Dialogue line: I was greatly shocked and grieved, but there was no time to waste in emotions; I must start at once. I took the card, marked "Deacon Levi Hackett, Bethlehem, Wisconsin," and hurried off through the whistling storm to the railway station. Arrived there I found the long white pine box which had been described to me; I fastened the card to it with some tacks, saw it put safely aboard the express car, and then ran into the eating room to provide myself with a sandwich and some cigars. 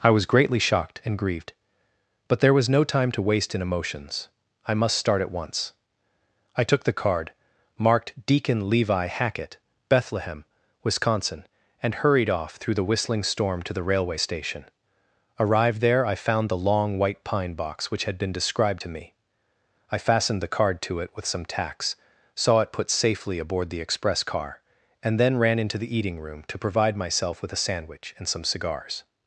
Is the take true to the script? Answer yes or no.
yes